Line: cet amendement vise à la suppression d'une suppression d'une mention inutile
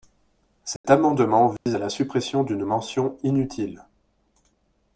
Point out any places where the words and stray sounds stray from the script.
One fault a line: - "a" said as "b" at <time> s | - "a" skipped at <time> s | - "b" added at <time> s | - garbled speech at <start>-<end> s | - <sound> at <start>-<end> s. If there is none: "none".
- dropout at 0.8-0.8 s
- dropout at 1.6-1.7 s
- "suppression d'une" skipped at 2.7 s